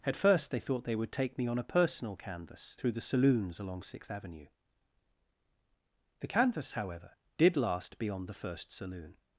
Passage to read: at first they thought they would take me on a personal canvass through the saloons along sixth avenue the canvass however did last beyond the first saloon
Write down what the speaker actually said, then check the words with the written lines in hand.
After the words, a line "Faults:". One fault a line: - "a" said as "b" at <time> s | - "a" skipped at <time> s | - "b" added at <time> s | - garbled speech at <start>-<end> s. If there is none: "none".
at first they thought they would take me on a personal canvass through the saloons along sixth avenue the canvass however did last beyond the first saloon
Faults:
none